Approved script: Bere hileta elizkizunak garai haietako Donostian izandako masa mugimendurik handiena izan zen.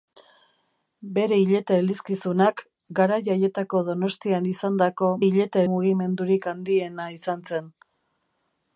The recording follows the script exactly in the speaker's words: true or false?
false